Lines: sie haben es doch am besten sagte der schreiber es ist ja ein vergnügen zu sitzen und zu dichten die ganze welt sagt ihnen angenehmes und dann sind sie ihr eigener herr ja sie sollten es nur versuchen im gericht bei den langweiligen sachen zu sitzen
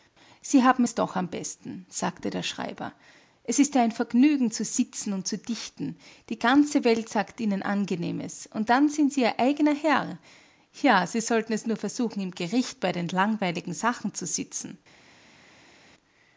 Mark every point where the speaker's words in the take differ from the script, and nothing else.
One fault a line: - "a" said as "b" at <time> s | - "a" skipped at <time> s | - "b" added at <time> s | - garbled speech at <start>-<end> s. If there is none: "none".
none